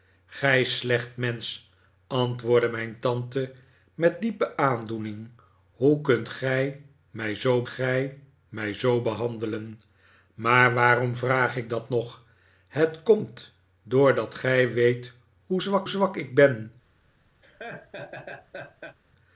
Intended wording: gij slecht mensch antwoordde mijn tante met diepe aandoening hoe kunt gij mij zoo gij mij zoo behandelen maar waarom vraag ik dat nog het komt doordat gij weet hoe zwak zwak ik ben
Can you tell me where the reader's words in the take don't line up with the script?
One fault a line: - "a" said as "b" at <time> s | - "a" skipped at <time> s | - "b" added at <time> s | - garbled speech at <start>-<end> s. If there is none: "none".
none